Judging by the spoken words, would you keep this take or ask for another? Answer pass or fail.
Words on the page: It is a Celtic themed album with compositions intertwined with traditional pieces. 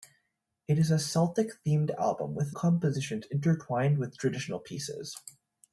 pass